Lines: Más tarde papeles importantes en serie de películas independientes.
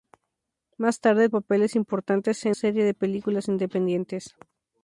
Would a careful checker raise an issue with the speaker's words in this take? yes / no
no